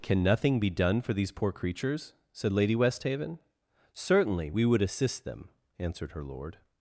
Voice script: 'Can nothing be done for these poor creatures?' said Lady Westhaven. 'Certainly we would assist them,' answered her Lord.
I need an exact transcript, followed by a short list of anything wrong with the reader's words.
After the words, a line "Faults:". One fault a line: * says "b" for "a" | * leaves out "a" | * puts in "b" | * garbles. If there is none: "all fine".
'Can nothing be done for these poor creatures?' said Lady Westhaven. 'Certainly we would assist them,' answered her Lord.
Faults:
all fine